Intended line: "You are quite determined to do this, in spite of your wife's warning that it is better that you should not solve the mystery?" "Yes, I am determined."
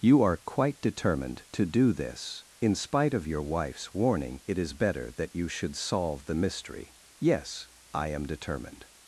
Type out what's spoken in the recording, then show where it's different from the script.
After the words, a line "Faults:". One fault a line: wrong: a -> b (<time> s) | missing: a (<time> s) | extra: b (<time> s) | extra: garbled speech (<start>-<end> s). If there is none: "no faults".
"You are quite determined to do this, in spite of your wife's warning it is better that you should solve the mystery?" "Yes, I am determined."
Faults:
missing: that (4.4 s)
missing: not (5.7 s)